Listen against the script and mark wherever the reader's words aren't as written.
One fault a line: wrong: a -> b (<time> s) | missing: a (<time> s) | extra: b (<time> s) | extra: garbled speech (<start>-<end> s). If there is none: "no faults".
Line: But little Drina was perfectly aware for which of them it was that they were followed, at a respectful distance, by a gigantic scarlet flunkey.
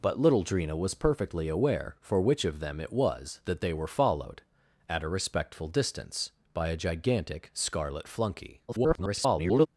extra: garbled speech (8.7-9.7 s)